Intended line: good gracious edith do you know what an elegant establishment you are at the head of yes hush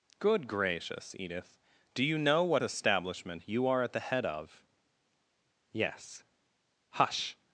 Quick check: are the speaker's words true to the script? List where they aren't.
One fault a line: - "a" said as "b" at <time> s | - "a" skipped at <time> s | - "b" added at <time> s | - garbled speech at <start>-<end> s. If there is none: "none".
- "an elegant" skipped at 2.6 s